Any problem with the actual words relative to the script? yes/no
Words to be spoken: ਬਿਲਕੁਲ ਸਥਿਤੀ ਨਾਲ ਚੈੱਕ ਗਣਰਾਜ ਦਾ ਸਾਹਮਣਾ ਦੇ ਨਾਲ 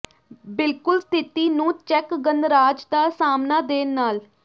yes